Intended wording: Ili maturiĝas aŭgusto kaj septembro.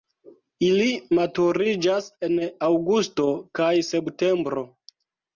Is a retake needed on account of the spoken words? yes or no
yes